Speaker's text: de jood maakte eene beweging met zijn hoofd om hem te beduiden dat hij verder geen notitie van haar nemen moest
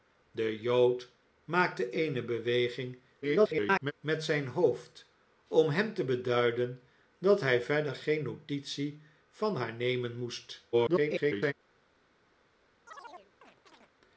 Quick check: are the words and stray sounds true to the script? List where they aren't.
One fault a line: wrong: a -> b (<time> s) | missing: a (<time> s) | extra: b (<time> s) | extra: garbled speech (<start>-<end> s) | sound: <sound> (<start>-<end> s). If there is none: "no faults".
extra: garbled speech (3.2-3.9 s)
extra: garbled speech (10.7-11.5 s)
sound: chirp (12.9-13.9 s)